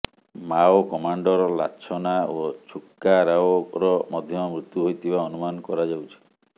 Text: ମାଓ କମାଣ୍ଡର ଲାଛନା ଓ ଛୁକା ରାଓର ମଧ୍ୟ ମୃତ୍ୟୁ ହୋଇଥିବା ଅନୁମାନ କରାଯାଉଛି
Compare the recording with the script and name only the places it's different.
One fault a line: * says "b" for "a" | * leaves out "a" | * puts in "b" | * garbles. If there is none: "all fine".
all fine